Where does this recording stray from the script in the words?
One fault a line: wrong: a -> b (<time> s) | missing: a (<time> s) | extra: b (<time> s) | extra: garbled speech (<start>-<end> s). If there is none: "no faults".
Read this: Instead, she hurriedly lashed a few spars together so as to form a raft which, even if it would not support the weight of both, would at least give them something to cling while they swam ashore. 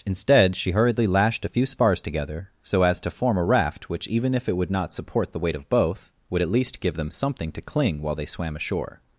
no faults